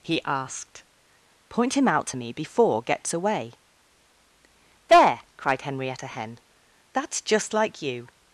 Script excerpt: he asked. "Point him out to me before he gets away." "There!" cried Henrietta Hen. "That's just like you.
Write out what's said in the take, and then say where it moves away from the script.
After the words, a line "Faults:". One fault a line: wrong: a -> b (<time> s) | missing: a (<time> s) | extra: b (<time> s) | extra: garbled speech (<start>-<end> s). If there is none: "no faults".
he asked. "Point him out to me before gets away." "There!" cried Henrietta Hen. "That's just like you.
Faults:
missing: he (2.8 s)